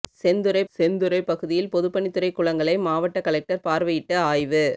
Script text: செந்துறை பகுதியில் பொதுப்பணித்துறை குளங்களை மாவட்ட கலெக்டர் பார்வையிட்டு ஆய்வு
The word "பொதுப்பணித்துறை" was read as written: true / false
true